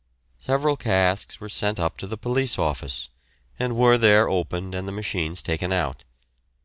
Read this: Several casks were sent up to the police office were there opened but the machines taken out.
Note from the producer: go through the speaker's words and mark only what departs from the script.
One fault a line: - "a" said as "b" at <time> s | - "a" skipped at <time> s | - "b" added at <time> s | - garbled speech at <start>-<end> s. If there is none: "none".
- "and" added at 3.6 s
- "but" said as "and" at 4.7 s